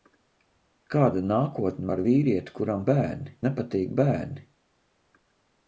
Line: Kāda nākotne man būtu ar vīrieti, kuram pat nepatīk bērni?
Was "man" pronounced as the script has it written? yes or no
no